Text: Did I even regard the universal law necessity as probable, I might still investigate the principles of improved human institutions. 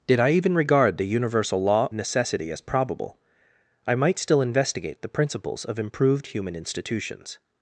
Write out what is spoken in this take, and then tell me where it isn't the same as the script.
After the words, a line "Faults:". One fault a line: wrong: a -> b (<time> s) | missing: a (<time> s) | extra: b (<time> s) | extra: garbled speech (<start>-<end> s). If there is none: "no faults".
Did I even regard the universal law necessity as probable, I might still investigate the principles of improved human institutions.
Faults:
no faults